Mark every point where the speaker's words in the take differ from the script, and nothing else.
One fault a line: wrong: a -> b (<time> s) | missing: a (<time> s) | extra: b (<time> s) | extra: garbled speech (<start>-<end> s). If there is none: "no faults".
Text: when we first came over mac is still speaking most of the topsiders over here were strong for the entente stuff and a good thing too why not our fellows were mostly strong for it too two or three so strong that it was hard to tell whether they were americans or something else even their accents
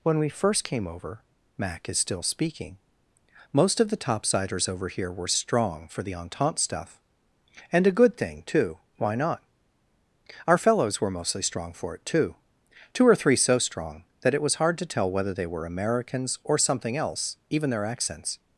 no faults